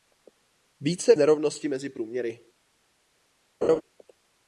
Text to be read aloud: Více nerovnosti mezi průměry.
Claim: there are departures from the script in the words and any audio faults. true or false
true